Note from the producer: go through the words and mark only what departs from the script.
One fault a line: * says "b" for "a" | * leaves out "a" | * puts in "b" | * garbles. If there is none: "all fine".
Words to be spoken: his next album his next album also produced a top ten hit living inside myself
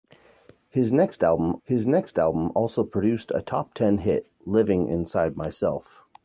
all fine